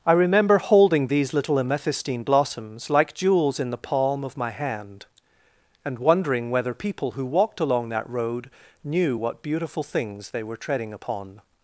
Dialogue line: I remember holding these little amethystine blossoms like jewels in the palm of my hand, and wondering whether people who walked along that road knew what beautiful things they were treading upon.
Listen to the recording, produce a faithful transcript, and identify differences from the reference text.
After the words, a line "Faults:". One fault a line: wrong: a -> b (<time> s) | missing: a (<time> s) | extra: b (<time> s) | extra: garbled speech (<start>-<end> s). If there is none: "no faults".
I remember holding these little amethystine blossoms like jewels in the palm of my hand, and wondering whether people who walked along that road knew what beautiful things they were treading upon.
Faults:
no faults